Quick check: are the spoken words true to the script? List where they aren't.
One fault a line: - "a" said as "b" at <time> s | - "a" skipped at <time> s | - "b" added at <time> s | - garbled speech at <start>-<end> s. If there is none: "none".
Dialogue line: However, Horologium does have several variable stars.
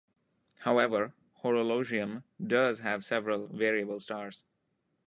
none